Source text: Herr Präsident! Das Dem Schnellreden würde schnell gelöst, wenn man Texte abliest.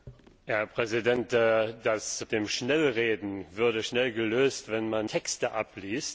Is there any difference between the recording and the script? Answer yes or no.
no